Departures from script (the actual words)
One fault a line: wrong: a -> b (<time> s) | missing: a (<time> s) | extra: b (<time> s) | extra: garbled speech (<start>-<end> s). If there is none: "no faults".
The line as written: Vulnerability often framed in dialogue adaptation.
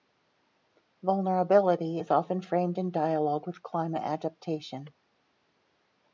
extra: is (2.0 s)
extra: with climate (3.5 s)